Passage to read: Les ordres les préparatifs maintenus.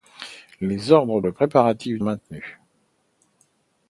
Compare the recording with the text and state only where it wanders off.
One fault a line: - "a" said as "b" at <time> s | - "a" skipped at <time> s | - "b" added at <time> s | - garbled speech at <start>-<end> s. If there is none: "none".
none